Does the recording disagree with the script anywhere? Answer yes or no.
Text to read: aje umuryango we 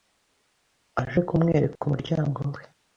yes